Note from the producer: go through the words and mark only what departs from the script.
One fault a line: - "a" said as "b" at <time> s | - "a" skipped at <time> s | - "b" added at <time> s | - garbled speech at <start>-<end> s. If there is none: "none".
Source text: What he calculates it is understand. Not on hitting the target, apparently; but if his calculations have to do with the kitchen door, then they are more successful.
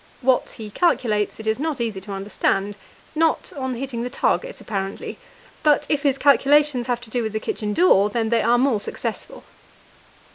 - "not easy to" added at 1.6 s